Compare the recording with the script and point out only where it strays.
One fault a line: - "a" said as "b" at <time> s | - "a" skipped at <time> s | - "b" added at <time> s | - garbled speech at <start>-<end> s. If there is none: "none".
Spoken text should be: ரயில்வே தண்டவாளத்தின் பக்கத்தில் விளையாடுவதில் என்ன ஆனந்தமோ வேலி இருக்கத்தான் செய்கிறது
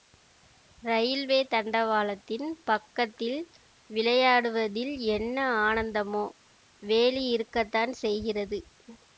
none